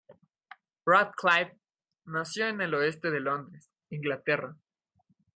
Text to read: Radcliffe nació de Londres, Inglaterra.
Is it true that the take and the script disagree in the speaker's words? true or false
true